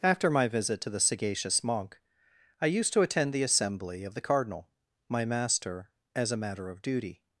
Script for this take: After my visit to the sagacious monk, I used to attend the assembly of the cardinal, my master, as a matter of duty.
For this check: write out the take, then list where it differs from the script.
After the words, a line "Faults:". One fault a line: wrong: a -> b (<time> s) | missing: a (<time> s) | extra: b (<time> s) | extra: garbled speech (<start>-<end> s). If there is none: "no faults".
After my visit to the sagacious monk, I used to attend the assembly of the cardinal, my master, as a matter of duty.
Faults:
no faults